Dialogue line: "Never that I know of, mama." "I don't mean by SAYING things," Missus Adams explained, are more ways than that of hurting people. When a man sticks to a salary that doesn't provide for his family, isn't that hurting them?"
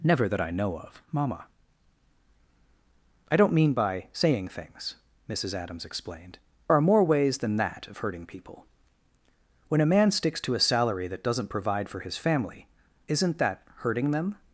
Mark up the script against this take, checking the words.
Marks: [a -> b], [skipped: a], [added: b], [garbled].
"Never that I know of, mama." "I don't mean by SAYING things," Missus Adams explained, are more ways than that of hurting people. When a man sticks to a salary that doesn't provide for his family, isn't that hurting them?"